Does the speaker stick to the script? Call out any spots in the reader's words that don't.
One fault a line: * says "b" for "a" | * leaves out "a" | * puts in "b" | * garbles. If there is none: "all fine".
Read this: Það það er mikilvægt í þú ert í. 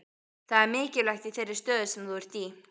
* leaves out "það"
* puts in "þeirri stöðu sem"